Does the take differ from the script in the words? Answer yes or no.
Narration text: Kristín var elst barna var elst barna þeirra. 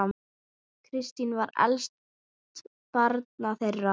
yes